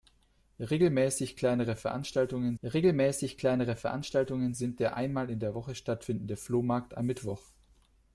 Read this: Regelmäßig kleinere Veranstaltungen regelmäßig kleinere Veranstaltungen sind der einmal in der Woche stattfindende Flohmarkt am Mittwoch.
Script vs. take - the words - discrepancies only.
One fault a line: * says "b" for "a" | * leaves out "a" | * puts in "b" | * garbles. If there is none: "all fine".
all fine